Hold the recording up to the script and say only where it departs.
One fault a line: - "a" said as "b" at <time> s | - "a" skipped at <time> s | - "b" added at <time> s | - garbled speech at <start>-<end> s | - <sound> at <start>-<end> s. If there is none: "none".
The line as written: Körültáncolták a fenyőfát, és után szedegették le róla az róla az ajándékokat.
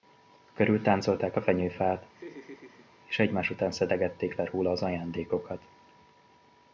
- laugh at 2.1-2.9 s
- "egymás" added at 3.2 s
- "róla az" skipped at 4.8 s